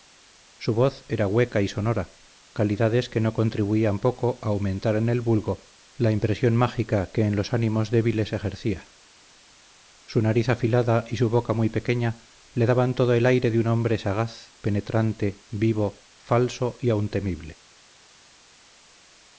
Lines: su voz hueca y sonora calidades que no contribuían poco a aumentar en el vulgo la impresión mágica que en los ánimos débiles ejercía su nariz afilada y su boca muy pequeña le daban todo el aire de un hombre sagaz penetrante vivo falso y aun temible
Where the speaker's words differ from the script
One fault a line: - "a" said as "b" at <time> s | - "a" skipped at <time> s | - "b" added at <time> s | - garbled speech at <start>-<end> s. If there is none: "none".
- "era" added at 1.1 s